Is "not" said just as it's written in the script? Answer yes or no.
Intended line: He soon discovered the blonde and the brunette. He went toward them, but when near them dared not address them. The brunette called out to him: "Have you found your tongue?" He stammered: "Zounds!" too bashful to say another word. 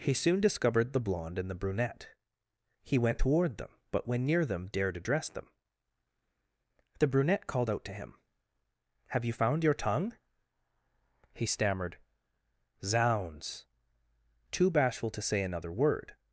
no